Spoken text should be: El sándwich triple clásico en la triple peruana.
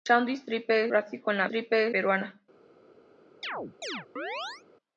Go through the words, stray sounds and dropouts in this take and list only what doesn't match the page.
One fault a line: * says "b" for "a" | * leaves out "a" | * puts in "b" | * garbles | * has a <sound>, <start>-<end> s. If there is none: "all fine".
* has a chirp, 3.4-4.6 s